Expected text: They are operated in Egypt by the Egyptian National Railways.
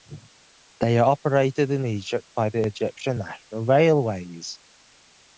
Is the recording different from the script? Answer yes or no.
no